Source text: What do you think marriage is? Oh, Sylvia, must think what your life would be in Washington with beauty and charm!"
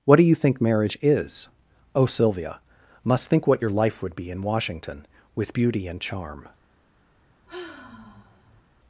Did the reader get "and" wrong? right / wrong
right